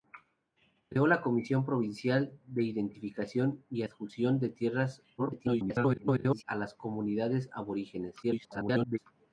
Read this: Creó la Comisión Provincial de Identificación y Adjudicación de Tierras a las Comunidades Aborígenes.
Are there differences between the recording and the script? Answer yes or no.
yes